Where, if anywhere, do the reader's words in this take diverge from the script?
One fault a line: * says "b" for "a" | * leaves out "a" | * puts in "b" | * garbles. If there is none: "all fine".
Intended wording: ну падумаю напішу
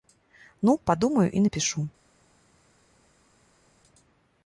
* puts in "і"